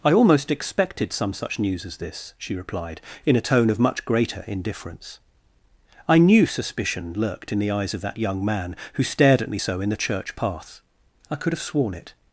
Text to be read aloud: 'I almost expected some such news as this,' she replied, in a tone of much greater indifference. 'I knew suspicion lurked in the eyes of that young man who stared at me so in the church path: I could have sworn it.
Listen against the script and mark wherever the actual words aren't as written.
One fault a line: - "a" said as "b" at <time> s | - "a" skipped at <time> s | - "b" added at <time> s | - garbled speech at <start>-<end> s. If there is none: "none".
none